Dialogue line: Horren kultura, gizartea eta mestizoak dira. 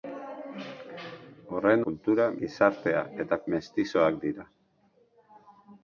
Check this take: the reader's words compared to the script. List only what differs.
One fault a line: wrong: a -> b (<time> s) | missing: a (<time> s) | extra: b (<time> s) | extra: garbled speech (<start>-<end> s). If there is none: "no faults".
no faults